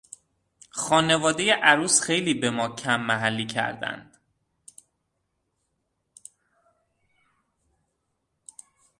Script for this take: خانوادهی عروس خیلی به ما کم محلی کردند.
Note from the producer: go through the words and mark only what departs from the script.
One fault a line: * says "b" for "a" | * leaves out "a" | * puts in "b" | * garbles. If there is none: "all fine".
all fine